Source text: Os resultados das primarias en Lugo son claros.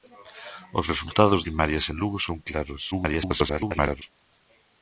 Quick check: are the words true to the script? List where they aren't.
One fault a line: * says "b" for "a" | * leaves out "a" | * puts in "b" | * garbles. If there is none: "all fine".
* leaves out "das"
* garbles